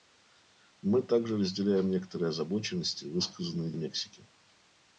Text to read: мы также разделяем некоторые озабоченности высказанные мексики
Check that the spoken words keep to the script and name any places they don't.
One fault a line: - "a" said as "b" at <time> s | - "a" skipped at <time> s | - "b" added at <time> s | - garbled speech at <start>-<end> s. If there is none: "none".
none